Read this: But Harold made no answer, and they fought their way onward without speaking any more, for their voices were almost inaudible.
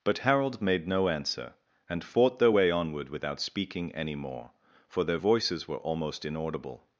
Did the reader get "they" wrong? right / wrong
wrong